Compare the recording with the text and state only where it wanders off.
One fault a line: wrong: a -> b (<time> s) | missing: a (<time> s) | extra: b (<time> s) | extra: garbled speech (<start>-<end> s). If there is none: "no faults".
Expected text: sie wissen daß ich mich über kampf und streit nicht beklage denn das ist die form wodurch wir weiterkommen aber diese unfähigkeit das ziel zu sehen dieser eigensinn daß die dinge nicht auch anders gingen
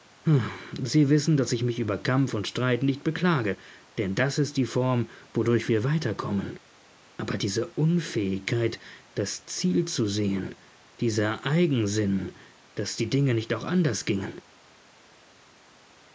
no faults